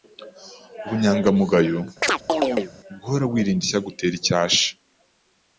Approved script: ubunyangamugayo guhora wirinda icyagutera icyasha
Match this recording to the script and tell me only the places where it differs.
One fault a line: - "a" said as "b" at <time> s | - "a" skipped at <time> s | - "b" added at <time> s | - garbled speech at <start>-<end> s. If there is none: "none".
none